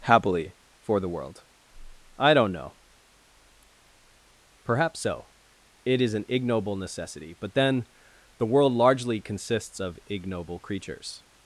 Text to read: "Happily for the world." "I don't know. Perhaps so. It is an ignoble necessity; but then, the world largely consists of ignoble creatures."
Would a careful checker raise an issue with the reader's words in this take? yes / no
no